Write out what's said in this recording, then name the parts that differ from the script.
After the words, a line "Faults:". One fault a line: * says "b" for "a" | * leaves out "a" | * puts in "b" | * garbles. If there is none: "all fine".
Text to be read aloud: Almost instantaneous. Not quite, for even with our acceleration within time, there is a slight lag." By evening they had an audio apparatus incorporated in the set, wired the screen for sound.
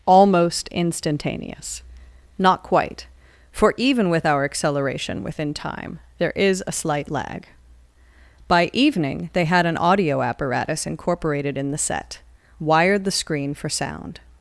Almost instantaneous. Not quite, for even with our acceleration within time, there is a slight lag." By evening they had an audio apparatus incorporated in the set, wired the screen for sound.
Faults:
all fine